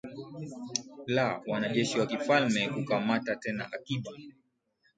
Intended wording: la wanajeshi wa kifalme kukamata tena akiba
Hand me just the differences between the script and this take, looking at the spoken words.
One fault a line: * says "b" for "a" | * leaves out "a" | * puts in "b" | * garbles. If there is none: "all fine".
all fine